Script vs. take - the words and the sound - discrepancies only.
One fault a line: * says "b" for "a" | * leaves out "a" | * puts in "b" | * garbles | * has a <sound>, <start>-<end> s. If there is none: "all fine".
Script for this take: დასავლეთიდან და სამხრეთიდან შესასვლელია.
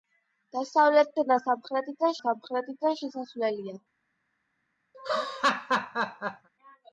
* puts in "სამხრეთიდან"
* has a laugh, 4.9-6.5 s